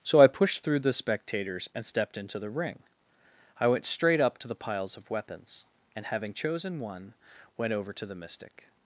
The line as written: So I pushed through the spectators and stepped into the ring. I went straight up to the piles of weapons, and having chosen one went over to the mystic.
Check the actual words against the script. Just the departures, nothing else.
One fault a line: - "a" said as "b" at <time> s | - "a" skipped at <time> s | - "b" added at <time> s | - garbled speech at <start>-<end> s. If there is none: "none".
none